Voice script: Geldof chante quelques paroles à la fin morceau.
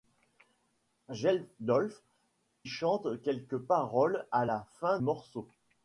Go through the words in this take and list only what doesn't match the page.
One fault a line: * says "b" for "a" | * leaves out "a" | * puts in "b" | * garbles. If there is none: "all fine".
all fine